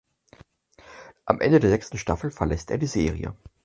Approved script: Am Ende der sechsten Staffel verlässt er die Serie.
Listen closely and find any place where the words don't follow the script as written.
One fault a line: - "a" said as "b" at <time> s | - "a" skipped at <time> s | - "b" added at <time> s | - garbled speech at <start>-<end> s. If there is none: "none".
none